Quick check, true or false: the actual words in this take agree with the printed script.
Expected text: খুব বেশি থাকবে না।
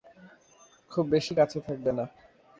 false